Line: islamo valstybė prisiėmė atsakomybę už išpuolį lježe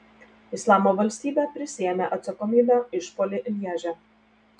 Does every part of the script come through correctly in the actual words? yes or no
no